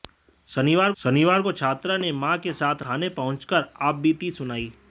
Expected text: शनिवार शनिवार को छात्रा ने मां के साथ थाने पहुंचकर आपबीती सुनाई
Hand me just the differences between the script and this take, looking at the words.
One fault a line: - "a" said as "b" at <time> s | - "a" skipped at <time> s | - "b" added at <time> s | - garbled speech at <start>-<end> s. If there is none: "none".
none